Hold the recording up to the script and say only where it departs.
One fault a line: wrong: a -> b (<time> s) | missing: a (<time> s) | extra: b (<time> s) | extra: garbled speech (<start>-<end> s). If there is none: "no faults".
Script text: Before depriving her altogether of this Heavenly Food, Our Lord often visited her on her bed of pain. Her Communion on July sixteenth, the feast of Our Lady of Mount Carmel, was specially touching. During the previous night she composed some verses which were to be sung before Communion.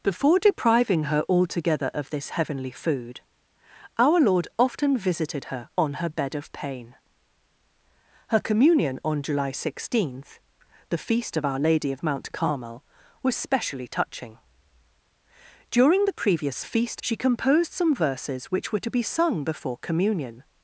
wrong: night -> feast (16.6 s)